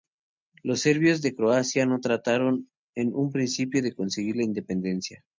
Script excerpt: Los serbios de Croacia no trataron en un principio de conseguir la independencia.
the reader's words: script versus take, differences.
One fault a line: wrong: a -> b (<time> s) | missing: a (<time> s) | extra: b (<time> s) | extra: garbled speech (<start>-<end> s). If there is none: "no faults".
no faults